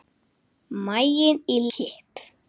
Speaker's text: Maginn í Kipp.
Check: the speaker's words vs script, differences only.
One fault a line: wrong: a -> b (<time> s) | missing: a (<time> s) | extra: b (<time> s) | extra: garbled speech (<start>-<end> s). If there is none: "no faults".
no faults